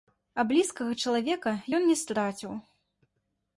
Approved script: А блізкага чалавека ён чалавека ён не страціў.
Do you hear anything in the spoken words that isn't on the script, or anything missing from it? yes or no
yes